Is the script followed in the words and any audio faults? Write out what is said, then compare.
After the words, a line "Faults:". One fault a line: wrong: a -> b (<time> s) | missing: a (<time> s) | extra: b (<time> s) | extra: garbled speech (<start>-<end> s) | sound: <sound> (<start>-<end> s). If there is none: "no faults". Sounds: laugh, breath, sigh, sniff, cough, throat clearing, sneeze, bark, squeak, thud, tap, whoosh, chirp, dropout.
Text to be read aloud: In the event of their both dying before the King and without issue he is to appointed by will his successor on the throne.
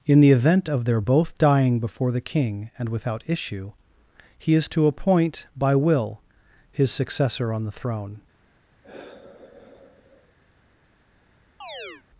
In the event of their both dying before the King and without issue he is to appoint by will his successor on the throne.
Faults:
wrong: appointed -> appoint (4.9 s)
sound: sigh (8.8-10.3 s)
sound: chirp (11.6-12.0 s)